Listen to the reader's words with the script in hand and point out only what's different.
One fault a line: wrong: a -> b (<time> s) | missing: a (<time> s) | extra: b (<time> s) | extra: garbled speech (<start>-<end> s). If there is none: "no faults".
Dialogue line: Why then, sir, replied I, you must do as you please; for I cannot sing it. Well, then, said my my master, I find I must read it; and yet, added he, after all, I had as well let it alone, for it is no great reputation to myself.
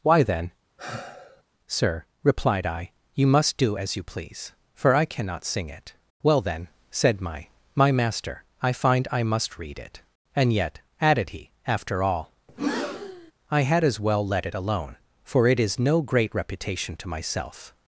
no faults